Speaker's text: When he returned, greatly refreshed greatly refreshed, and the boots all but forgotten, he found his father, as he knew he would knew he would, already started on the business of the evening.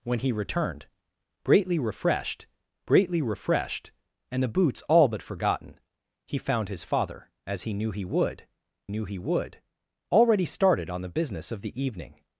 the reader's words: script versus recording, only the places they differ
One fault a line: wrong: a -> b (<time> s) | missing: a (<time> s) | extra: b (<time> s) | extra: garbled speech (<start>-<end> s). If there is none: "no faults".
no faults